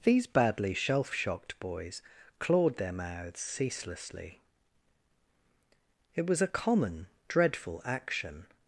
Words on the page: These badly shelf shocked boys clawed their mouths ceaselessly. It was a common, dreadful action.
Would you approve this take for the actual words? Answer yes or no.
yes